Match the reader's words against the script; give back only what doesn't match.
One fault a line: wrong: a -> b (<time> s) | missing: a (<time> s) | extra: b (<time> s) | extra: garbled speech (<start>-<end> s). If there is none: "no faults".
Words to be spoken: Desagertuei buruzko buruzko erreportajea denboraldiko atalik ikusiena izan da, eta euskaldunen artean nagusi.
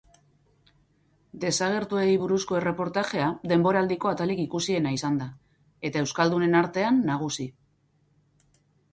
missing: buruzko (2.6 s)